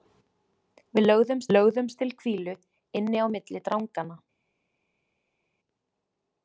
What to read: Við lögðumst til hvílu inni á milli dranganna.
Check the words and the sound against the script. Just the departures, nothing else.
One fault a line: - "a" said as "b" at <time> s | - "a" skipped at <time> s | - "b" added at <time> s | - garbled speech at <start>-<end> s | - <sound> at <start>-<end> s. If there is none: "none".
- "lögðumst" added at 1.5 s